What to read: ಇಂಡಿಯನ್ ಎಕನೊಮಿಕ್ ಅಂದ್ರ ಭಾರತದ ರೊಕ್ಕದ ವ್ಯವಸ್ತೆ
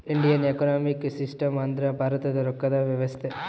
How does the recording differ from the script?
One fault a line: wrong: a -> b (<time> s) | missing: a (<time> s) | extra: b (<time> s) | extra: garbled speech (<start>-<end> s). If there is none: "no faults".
extra: ಸಿಸ್ಟಮ್ (1.1 s)